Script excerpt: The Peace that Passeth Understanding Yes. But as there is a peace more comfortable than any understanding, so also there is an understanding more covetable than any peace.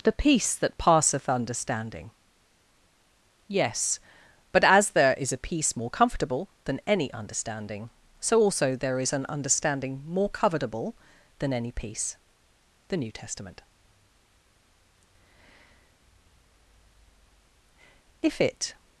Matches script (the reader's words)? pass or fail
fail